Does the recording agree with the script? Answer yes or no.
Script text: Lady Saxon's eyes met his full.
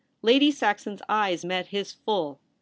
yes